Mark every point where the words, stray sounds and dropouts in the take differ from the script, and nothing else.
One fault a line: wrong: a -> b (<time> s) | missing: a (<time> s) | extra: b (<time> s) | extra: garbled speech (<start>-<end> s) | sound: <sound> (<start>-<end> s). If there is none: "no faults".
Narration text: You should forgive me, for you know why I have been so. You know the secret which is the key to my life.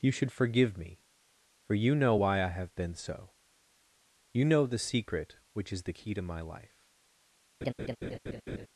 sound: laugh (7.6-8.7 s)